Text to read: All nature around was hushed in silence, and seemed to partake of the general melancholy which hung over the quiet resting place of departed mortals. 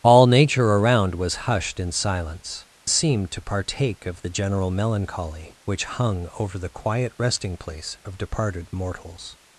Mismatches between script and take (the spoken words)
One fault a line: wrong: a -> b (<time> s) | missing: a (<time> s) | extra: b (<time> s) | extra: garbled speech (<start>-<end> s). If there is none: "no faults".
missing: and (2.6 s)